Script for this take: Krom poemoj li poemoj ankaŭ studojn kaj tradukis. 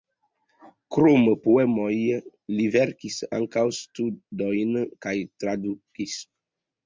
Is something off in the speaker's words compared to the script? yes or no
yes